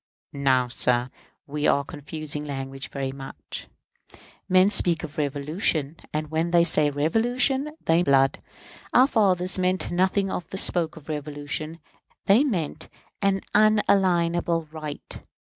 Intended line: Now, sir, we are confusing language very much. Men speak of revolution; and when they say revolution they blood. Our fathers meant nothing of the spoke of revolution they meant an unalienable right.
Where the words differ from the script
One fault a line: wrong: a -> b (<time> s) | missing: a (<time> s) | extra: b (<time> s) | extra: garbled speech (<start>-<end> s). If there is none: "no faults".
no faults